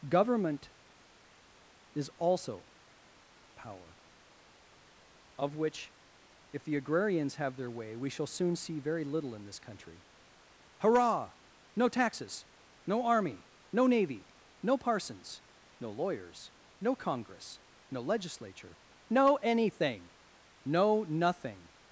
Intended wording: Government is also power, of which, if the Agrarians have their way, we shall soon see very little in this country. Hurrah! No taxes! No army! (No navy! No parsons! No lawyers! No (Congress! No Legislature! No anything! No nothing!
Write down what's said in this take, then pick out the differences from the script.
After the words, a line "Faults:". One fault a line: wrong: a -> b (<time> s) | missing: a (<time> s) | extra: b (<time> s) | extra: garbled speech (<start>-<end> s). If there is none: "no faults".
Government is also power, of which, if the Agrarians have their way, we shall soon see very little in this country. Hurrah! No taxes! No army! (No navy! No parsons! No lawyers! No (Congress! No Legislature! No anything! No nothing!
Faults:
no faults